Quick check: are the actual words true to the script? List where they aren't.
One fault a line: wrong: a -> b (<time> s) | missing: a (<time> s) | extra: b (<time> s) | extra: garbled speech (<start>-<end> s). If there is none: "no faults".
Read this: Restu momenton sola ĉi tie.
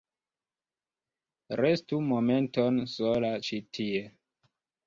no faults